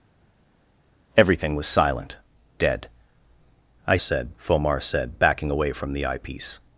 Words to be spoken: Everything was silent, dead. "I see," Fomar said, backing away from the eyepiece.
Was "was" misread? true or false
false